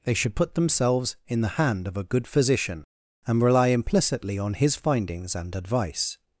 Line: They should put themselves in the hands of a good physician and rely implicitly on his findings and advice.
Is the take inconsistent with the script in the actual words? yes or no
yes